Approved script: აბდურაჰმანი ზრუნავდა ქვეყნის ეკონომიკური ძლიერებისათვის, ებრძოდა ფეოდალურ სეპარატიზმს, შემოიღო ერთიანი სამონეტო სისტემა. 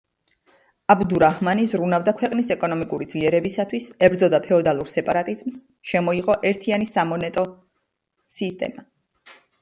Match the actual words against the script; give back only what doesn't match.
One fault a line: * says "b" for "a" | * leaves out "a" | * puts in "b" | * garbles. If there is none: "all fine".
all fine